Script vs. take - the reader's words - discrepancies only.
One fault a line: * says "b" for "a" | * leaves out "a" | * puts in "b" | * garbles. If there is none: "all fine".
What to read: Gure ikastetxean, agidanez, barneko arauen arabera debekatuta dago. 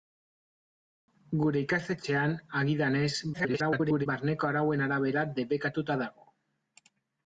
* garbles